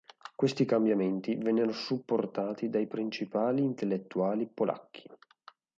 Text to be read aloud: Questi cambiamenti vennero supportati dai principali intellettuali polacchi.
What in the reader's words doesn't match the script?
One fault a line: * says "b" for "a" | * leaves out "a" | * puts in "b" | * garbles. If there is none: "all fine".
all fine